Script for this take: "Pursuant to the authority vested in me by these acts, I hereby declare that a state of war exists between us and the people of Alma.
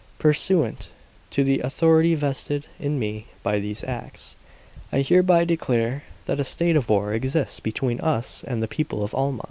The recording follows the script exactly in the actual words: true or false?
true